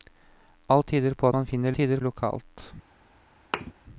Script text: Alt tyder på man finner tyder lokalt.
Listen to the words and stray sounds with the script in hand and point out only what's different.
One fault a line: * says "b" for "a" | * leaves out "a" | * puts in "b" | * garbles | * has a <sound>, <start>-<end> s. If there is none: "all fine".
* has a thud, 3.5-3.7 s